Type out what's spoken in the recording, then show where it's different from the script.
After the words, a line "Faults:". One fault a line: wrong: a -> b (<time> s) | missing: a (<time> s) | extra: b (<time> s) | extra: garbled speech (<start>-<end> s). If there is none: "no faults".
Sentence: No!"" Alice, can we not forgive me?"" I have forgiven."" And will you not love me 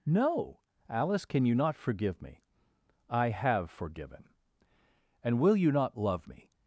No!"" Alice, can you not forgive me?"" I have forgiven."" And will you not love me
Faults:
wrong: we -> you (1.4 s)